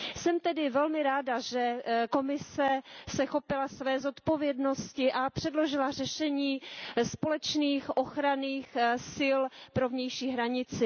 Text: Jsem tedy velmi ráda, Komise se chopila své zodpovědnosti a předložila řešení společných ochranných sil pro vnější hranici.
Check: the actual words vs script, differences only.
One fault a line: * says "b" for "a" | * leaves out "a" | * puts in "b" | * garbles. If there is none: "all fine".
* puts in "že"